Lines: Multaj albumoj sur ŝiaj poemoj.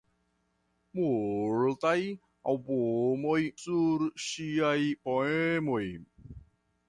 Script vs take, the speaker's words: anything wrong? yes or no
no